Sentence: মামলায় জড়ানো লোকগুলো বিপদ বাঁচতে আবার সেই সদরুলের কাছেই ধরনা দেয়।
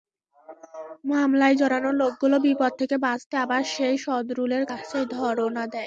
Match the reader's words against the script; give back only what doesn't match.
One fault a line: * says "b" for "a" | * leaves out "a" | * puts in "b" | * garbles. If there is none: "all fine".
* puts in "থেকে"